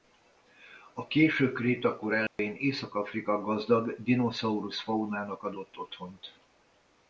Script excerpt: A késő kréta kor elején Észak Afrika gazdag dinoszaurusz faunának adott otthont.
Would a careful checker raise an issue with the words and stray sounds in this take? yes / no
yes